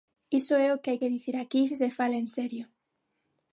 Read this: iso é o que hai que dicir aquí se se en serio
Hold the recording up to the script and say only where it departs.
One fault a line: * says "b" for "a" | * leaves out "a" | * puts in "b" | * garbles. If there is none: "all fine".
* puts in "fala"